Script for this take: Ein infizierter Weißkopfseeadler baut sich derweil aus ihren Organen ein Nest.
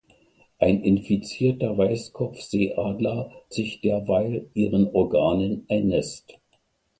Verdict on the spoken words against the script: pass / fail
fail